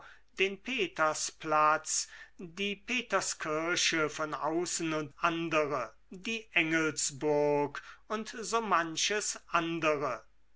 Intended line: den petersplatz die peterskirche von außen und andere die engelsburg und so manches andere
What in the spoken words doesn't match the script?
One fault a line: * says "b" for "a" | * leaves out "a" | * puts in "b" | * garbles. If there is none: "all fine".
all fine